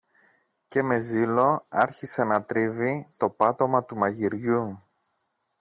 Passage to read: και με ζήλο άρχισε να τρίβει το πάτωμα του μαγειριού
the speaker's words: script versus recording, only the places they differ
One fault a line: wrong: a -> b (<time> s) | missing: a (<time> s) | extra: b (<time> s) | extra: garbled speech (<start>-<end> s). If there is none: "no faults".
no faults